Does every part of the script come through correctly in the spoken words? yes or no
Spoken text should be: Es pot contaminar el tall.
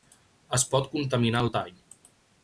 yes